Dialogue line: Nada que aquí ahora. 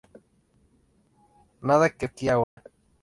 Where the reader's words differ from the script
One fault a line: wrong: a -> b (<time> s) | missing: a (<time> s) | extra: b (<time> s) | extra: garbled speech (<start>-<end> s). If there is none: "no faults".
no faults